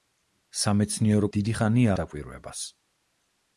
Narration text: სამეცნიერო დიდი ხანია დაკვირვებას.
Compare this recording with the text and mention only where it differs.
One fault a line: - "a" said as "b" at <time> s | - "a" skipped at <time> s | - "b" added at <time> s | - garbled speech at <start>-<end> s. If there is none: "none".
none